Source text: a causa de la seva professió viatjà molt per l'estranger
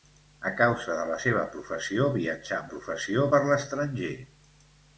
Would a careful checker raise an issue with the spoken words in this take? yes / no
yes